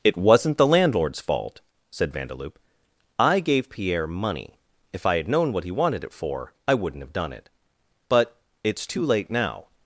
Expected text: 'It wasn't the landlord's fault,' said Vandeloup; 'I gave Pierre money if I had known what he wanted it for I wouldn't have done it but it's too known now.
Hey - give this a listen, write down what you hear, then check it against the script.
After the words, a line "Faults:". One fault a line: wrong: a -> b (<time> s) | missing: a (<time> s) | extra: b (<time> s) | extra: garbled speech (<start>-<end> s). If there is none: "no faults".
'It wasn't the landlord's fault,' said Vandeloup; 'I gave Pierre money if I had known what he wanted it for I wouldn't have done it but it's too late now.
Faults:
wrong: known -> late (9.1 s)